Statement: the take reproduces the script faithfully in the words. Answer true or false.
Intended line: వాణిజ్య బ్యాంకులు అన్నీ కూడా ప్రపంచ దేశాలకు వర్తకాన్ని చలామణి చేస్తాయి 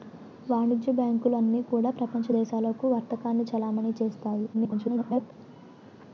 false